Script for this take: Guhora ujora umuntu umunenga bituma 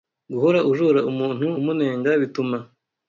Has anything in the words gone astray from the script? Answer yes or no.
no